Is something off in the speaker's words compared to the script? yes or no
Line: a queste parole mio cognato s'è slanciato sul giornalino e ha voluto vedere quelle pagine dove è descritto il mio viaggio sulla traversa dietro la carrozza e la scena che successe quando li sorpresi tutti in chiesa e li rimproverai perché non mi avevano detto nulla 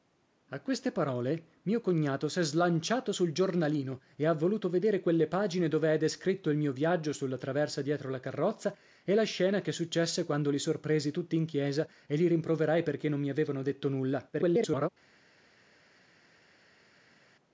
yes